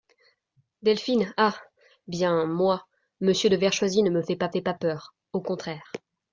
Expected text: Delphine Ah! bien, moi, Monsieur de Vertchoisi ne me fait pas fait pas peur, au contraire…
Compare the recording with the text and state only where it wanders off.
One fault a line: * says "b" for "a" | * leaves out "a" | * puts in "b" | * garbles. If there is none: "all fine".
all fine